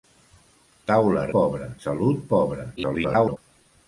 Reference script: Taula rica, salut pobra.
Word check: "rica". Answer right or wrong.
wrong